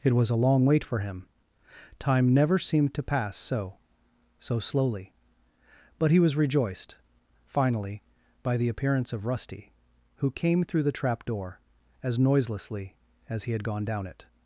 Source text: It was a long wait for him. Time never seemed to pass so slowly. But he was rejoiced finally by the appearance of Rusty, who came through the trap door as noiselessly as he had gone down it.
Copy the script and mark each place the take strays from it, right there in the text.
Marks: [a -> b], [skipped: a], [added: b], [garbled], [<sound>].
It was a long wait for him. Time never seemed to pass so [added: so] slowly. But he was rejoiced finally by the appearance of Rusty, who came through the trap door as noiselessly as he had gone down it.